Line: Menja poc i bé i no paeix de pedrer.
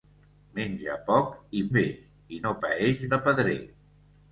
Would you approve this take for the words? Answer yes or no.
yes